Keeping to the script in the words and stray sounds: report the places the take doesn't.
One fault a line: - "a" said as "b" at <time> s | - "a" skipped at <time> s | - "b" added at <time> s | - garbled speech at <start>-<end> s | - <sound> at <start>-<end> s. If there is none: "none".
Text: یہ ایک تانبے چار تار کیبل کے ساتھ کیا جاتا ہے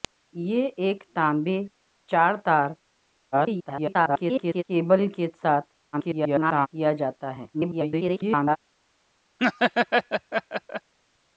- garbled speech at 3.3-4.6 s
- garbled speech at 5.9-6.7 s
- garbled speech at 7.5-8.6 s
- laugh at 9.4-10.9 s